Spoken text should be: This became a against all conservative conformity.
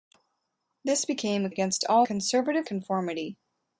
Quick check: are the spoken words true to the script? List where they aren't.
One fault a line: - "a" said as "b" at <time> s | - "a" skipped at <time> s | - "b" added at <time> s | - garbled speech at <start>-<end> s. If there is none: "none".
none